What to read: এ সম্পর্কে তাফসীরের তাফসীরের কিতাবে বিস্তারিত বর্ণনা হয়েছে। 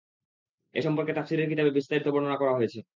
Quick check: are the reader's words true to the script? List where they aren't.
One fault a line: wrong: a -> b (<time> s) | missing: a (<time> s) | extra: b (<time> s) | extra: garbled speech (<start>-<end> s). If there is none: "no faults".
missing: তাফসীরের (1.5 s)
extra: করা (2.4 s)